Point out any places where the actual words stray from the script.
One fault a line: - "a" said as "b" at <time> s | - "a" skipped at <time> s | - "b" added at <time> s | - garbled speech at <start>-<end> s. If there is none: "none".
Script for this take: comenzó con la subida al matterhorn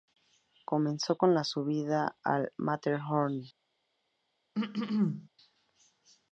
none